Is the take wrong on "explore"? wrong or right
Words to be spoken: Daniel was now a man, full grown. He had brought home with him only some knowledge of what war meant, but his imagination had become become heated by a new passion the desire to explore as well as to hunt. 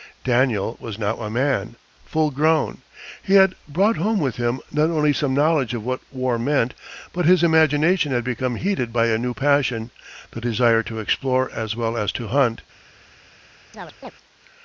right